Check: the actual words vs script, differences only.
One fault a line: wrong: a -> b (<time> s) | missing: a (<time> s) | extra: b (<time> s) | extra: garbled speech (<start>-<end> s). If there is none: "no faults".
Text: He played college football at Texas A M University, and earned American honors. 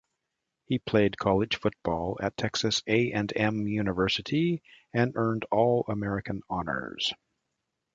extra: and (3.1 s)
extra: All (5.5 s)